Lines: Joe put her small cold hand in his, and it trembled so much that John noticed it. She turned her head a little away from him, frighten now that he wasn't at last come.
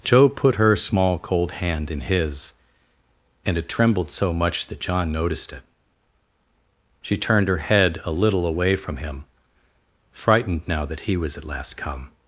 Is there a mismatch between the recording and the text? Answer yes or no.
yes